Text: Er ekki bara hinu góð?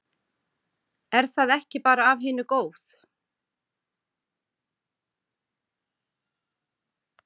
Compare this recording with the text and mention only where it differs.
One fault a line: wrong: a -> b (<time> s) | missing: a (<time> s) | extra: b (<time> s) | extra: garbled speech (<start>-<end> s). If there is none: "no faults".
extra: það (1.4 s)
extra: af (2.1 s)